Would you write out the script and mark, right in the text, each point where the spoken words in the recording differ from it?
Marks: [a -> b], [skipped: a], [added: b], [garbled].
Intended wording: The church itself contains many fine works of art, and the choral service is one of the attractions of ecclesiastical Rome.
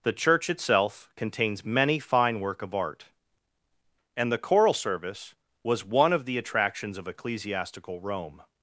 The church itself contains many fine [works -> work] of art, and the choral service [is -> was] one of the attractions of ecclesiastical Rome.